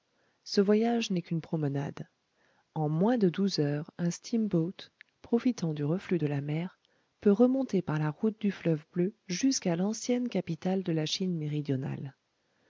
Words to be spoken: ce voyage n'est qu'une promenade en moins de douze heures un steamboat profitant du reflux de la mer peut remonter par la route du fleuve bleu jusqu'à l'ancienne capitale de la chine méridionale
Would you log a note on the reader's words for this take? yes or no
no